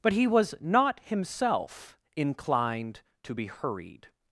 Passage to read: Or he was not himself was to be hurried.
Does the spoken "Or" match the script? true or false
false